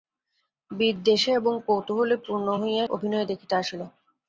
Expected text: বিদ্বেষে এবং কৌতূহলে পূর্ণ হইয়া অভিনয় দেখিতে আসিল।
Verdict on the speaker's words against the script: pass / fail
pass